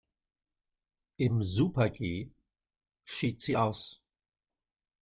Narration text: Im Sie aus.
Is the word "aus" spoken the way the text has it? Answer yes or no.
yes